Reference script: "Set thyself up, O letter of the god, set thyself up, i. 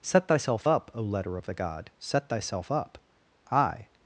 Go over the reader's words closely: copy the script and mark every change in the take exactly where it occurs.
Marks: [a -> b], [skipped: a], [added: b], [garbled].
"Set thyself up, O letter of the god, set thyself up, i.